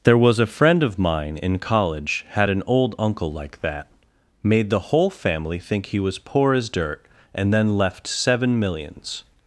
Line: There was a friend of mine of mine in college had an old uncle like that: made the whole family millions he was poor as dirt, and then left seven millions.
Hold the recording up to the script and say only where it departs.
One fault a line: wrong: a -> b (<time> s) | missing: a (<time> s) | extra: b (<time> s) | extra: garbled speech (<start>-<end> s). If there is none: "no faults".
missing: of mine (1.4 s)
wrong: millions -> think (5.6 s)